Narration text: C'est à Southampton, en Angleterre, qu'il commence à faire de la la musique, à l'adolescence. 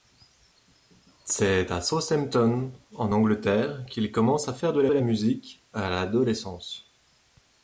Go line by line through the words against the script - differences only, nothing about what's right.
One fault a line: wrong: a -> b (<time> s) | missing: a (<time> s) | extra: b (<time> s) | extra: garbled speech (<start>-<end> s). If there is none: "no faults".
no faults